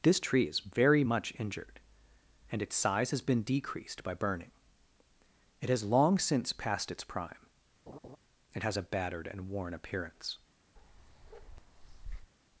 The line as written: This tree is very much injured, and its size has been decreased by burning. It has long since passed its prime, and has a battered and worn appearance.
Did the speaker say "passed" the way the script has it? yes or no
yes